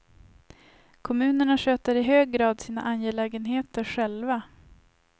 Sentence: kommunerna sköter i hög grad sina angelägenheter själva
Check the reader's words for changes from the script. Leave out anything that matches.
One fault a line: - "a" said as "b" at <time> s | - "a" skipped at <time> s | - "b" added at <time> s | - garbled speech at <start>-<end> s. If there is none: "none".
none